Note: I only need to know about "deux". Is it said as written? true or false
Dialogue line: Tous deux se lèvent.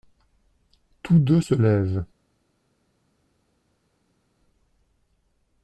true